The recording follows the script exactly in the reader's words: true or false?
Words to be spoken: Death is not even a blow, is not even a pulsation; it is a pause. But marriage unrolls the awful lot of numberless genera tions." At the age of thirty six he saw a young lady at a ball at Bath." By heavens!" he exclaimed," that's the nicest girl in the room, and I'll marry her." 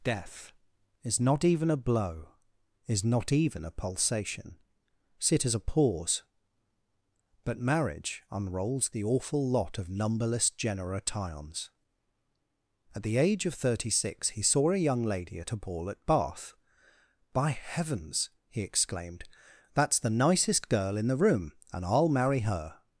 false